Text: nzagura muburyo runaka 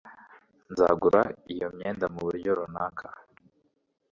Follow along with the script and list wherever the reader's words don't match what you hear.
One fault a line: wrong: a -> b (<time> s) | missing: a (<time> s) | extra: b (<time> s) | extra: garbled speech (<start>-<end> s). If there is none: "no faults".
extra: iyo myenda (1.5 s)